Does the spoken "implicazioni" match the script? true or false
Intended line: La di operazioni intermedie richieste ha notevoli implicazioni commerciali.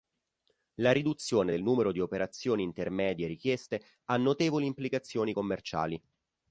true